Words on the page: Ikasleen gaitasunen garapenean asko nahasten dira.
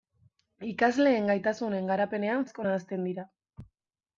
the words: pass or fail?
pass